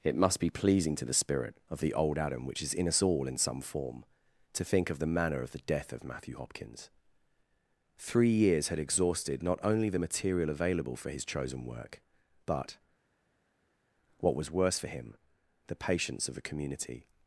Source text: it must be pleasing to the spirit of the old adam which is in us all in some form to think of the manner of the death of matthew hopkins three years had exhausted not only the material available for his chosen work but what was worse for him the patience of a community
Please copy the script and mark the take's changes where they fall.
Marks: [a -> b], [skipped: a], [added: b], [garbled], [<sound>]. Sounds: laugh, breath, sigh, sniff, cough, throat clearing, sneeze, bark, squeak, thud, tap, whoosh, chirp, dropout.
it must be pleasing to the spirit of the old adam which is in us all in some form to think of the manner of the death of matthew hopkins three years had exhausted not only the material available for his chosen work but what was worse for him the patience of a community